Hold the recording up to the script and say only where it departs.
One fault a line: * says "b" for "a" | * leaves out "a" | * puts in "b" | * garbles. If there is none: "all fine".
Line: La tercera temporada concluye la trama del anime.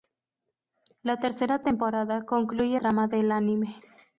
* leaves out "la"